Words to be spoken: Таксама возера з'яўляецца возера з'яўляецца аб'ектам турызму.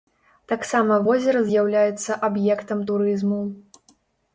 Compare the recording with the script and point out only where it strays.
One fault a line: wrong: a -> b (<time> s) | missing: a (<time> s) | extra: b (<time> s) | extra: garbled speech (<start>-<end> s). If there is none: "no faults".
missing: возера з'яўляецца (2.2 s)